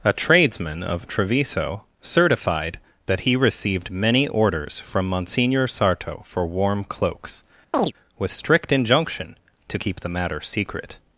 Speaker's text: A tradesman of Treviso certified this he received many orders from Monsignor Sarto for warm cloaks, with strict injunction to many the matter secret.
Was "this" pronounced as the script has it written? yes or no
no